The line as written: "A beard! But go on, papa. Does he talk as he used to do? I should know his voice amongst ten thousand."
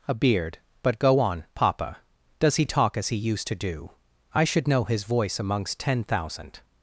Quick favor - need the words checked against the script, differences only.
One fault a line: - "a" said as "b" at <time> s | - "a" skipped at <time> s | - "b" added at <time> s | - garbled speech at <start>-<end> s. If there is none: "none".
none